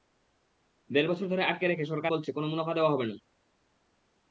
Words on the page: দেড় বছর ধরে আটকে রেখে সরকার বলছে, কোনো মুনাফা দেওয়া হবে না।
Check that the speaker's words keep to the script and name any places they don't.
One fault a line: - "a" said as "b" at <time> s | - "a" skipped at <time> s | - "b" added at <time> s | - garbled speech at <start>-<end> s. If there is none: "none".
none